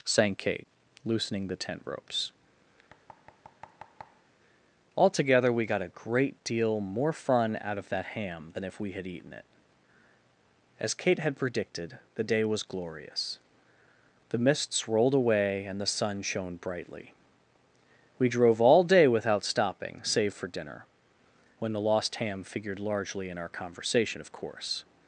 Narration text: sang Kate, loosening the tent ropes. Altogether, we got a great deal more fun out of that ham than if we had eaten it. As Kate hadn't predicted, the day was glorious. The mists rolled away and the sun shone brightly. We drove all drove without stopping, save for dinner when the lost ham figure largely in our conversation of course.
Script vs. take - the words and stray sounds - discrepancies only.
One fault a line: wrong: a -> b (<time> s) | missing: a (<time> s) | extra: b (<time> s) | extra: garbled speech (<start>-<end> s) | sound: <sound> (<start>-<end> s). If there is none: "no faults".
sound: thud (2.9-4.3 s)
wrong: hadn't -> had (11.2 s)
wrong: drove -> day (18.8 s)
wrong: figure -> figured (22.4 s)